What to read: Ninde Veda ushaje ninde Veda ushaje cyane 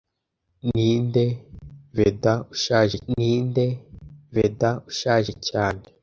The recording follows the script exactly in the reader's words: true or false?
true